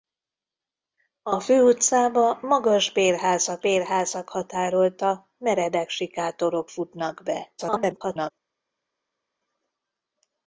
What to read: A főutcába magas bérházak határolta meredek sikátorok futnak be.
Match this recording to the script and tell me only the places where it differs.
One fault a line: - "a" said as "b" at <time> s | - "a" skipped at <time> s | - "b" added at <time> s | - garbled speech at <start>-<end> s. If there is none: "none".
- "bérházak" added at 3.6 s
- garbled speech at 7.6-8.3 s